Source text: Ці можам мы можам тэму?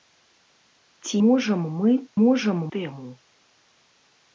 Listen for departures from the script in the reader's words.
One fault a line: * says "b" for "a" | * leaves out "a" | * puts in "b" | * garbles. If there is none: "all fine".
all fine